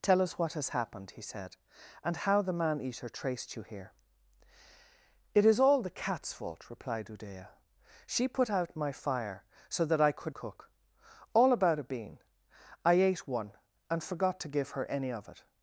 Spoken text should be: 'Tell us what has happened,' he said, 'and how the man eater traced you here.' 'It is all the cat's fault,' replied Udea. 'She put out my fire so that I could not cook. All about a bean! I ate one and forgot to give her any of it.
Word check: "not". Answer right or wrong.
wrong